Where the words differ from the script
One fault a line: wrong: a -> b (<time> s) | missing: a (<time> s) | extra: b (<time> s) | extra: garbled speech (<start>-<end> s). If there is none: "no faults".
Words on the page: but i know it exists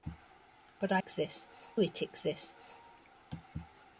wrong: know -> exists (1.0 s)